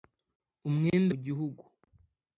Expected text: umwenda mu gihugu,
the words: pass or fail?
pass